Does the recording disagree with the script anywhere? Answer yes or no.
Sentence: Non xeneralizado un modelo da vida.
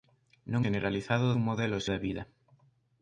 no